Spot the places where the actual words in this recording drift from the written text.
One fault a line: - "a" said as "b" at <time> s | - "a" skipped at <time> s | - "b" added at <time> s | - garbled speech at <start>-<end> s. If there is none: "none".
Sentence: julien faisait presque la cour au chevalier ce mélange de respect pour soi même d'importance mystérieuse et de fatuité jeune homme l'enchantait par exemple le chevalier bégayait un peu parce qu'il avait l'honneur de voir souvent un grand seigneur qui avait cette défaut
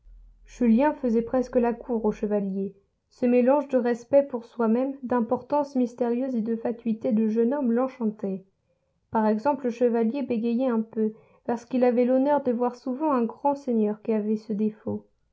- "de" added at 7.1 s
- "cette" said as "ce" at 14.4 s